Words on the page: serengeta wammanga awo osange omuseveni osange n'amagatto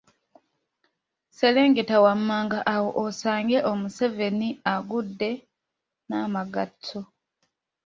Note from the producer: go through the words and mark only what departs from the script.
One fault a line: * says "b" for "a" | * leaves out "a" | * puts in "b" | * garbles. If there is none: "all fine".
* says "agudde" for "osange"